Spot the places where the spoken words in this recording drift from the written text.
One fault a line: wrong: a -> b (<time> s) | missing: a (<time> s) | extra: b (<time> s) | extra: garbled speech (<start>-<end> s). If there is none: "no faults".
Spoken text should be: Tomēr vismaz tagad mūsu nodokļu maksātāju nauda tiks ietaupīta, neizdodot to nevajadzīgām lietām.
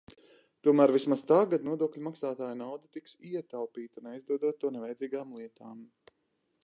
missing: mūsu (1.7 s)